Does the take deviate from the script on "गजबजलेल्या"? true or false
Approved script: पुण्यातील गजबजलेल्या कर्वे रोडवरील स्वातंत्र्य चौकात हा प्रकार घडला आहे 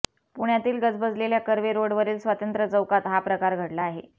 false